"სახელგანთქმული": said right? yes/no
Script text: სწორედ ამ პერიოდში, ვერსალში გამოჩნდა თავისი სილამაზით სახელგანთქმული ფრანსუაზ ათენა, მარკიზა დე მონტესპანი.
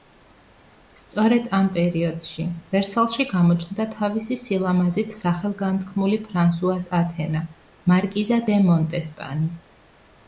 yes